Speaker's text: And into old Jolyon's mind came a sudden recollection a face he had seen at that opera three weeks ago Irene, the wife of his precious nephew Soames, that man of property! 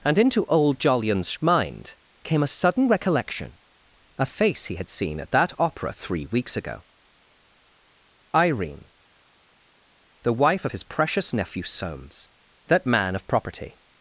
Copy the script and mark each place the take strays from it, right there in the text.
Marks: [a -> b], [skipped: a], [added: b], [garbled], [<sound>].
And into old Jolyon's mind came a sudden recollection a face he had seen at that opera three weeks ago Irene, the wife of his precious nephew Soames, that man of property!